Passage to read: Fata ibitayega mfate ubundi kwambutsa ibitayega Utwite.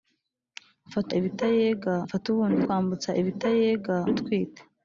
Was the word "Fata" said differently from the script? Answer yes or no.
no